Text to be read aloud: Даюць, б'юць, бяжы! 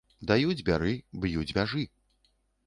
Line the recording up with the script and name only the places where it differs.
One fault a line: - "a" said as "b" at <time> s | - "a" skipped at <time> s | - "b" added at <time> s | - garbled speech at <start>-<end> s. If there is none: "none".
- "бяры" added at 0.7 s